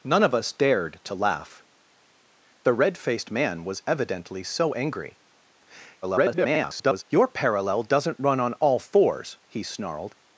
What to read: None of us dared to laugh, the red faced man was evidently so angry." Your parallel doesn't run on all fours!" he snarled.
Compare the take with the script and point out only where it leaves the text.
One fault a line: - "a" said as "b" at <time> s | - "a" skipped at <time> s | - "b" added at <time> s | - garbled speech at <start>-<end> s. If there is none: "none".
- garbled speech at 6.0-7.0 s